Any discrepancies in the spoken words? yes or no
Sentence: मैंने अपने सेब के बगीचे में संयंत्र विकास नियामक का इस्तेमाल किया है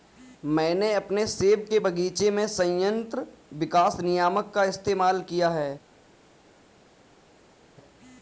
no